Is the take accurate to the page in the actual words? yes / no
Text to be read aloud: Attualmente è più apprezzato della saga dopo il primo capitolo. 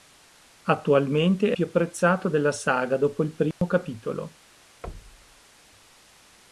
yes